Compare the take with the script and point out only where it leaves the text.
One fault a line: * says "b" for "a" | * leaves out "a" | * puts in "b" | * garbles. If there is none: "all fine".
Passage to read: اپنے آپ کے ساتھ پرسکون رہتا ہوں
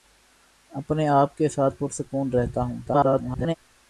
* garbles